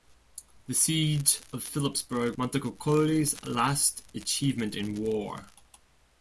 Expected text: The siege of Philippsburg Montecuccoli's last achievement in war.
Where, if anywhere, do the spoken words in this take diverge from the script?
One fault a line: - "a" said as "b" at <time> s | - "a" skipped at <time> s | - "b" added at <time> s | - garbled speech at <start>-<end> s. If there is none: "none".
none